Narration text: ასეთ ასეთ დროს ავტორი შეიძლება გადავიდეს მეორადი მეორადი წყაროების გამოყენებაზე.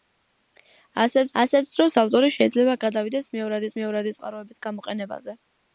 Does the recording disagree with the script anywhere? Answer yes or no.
no